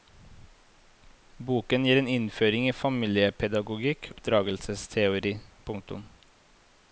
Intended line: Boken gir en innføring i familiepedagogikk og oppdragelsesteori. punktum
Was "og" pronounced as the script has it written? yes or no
no